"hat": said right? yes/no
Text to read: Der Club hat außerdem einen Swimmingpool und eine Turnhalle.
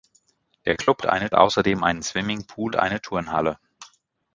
no